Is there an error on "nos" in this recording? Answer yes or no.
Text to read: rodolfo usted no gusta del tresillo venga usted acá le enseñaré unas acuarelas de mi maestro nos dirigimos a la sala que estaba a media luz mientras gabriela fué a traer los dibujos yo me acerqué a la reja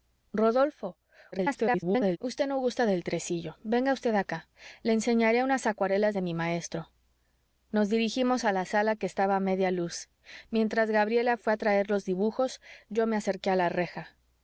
no